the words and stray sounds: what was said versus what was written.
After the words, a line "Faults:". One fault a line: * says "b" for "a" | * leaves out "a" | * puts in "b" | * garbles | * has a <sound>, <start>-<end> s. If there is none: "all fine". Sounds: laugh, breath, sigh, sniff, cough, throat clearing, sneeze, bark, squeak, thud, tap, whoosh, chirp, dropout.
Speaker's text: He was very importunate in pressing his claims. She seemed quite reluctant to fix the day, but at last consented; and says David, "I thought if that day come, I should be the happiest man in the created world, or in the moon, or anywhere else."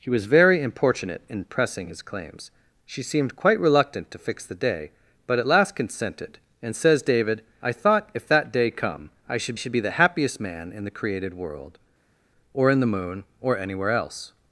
He was very importunate in pressing his claims. She seemed quite reluctant to fix the day, but at last consented; and says David, "I thought if that day come, I should should be the happiest man in the created world, or in the moon, or anywhere else."
Faults:
* puts in "should"